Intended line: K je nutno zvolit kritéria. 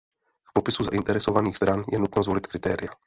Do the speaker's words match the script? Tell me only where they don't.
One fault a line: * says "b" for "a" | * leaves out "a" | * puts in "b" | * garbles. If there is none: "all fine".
* puts in "popisu zainteresovaných stran"